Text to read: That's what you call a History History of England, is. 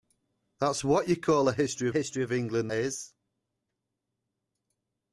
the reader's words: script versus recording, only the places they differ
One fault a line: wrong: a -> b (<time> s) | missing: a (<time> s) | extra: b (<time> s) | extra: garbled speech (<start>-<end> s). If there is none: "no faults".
no faults